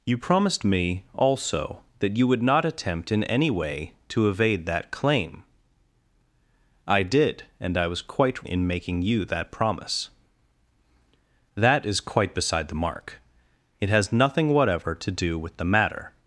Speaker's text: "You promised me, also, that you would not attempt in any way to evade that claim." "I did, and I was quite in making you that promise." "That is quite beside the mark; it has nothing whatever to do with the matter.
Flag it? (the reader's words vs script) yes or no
no